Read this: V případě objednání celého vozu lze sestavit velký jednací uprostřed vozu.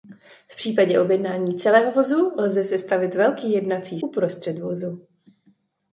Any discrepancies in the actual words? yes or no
no